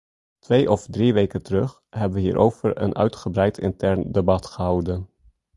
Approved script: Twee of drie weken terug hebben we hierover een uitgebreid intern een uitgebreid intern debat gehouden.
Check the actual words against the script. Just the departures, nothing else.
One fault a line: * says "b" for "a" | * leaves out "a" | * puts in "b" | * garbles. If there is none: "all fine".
* leaves out "een uitgebreid intern"